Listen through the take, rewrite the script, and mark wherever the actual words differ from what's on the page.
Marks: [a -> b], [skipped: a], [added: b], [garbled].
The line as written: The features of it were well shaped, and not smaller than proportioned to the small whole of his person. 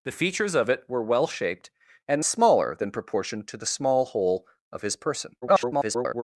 The features of it were well shaped, and [skipped: not] smaller than proportioned to the small whole of his person. [garbled]